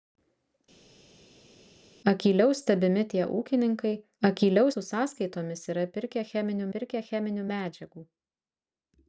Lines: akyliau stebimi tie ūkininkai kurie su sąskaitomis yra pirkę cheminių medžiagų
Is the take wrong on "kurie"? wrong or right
wrong